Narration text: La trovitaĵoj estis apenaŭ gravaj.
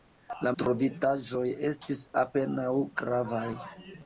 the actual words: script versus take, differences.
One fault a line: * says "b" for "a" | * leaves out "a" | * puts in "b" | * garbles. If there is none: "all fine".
all fine